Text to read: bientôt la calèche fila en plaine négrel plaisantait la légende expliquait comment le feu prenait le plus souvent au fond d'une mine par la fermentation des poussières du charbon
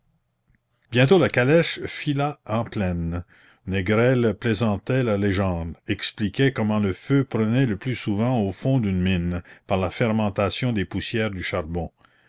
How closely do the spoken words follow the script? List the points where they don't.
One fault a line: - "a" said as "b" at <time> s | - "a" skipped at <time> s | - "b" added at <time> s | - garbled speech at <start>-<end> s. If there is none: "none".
none